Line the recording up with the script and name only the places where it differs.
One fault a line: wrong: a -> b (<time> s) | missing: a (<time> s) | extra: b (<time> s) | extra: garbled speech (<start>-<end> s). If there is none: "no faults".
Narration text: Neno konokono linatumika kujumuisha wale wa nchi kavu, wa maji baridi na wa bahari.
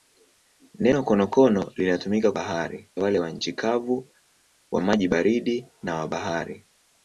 wrong: kujumuisha -> bahari (2.3 s)